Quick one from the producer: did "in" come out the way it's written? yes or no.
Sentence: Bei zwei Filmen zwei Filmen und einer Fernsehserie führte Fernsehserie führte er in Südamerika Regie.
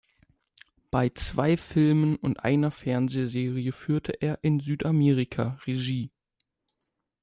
yes